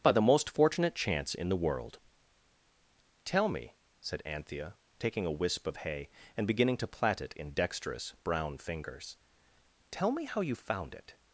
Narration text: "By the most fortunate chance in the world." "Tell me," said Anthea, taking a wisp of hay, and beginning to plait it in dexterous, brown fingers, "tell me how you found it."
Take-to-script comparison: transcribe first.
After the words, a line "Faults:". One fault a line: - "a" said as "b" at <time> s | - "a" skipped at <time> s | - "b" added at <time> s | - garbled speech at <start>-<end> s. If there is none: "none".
"By the most fortunate chance in the world." "Tell me," said Anthea, taking a wisp of hay, and beginning to plait it in dexterous, brown fingers, "tell me how you found it."
Faults:
none